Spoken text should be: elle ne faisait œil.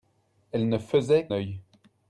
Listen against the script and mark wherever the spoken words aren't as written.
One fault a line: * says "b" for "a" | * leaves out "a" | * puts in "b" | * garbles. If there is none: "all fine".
all fine